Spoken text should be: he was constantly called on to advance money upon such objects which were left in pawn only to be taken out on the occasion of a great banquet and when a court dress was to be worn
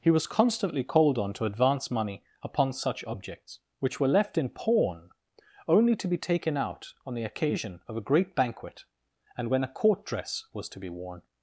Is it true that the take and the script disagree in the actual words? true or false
false